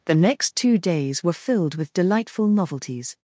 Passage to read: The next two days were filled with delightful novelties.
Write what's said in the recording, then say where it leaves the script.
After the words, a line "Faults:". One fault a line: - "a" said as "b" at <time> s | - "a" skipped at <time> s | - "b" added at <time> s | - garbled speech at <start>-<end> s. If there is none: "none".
The next two days were filled with delightful novelties.
Faults:
none